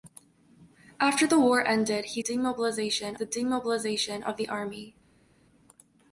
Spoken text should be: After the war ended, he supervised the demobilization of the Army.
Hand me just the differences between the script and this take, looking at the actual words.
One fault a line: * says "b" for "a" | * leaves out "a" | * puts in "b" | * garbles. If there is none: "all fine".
* says "demobilization" for "supervised"